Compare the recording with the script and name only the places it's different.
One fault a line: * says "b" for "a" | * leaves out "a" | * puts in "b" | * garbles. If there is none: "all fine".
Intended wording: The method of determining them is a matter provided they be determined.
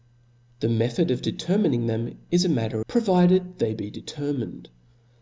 all fine